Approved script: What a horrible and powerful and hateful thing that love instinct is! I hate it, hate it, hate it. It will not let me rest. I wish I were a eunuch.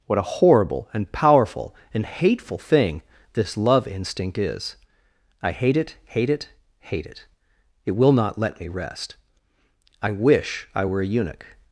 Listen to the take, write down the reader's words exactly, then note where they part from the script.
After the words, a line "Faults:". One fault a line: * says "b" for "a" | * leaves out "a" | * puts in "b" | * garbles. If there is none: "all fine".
What a horrible and powerful and hateful thing this love instinct is! I hate it, hate it, hate it. It will not let me rest. I wish I were a eunuch.
Faults:
* says "this" for "that"